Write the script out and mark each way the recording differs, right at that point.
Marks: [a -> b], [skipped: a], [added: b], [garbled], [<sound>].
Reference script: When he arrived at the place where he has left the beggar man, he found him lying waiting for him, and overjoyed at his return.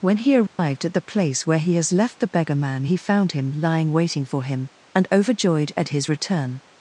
When he arrived [dropout] at the place where he has left the beggar man, he found him lying waiting for him, and overjoyed at his return.